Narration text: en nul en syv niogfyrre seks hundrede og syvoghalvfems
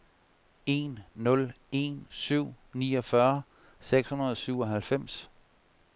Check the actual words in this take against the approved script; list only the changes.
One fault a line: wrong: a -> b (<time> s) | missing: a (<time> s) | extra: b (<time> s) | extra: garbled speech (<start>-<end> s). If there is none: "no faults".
no faults